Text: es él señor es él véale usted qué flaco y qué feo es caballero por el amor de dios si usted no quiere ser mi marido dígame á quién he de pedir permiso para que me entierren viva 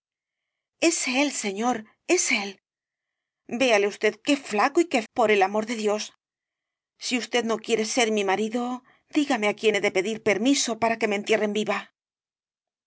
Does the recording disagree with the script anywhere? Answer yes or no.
yes